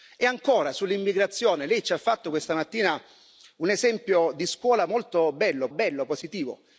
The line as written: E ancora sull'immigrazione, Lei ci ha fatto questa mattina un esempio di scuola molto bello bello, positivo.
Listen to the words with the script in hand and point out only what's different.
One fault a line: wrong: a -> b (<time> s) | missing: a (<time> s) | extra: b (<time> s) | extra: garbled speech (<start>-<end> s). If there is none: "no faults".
no faults